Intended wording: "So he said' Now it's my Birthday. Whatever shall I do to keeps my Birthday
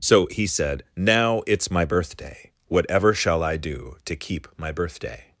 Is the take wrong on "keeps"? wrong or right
wrong